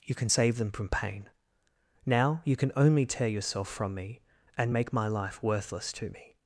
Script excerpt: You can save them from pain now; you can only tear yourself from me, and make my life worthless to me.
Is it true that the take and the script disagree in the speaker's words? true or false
false